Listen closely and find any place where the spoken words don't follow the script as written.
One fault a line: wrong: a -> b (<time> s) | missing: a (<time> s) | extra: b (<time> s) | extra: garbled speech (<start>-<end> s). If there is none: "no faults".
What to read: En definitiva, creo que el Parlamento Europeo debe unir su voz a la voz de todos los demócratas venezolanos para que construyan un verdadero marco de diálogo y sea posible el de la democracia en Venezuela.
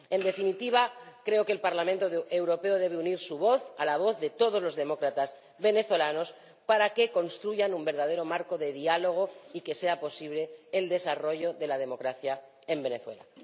extra: que (9.6 s)
extra: desarrollo (10.9 s)